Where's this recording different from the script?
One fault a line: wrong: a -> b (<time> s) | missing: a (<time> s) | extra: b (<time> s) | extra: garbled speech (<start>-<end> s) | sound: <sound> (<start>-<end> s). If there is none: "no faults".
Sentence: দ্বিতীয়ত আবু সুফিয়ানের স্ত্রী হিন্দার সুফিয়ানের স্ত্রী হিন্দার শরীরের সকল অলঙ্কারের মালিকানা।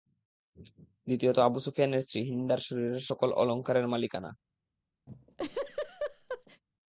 missing: সুফিয়ানের স্ত্রী হিন্দার (2.6 s)
sound: laugh (5.1-6.6 s)